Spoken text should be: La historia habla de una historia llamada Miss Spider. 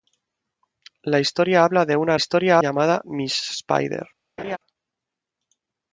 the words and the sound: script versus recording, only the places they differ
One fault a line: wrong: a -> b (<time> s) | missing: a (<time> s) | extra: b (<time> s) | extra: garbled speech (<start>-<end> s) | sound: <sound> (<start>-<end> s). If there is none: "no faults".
sound: laugh (4.4-4.6 s)